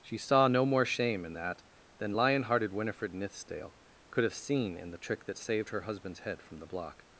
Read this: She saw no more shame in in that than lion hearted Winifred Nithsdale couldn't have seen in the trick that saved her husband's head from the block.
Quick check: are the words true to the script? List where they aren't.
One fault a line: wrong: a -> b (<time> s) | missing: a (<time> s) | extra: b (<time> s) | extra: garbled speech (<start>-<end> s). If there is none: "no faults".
missing: in (1.4 s)
wrong: couldn't -> could (4.1 s)